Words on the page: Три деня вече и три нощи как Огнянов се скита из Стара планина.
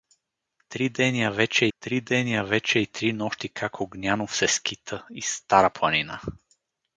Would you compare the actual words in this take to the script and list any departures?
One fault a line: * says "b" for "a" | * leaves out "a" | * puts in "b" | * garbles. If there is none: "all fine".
* puts in "три деня вече"